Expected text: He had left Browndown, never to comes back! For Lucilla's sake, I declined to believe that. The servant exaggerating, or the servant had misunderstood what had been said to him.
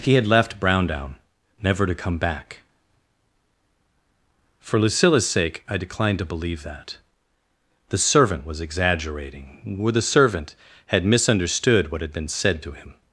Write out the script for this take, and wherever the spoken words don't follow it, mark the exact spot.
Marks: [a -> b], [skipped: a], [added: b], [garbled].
He had left Browndown, never to [comes -> come] back! For Lucilla's sake, I declined to believe that. The servant [added: was] exaggerating, or the servant had misunderstood what had been said to him.